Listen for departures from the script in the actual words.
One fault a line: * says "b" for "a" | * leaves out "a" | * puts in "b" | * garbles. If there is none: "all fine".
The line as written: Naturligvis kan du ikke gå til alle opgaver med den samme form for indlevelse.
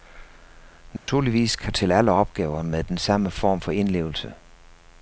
* leaves out "du ikke gå"